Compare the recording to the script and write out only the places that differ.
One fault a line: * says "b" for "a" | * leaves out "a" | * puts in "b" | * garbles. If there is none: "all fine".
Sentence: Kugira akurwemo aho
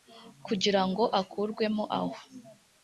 * puts in "ngo"